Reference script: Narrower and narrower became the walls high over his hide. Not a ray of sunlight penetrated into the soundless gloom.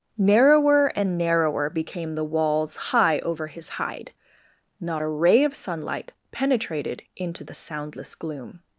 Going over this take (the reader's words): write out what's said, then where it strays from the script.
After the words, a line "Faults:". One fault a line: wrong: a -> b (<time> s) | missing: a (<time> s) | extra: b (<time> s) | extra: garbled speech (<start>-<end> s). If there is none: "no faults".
Narrower and narrower became the walls high over his hide. Not a ray of sunlight penetrated into the soundless gloom.
Faults:
no faults